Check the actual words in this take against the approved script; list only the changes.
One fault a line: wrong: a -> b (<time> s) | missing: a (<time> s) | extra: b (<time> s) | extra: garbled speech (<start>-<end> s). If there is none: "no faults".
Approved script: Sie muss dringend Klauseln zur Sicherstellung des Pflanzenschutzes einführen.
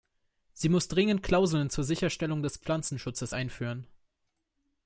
no faults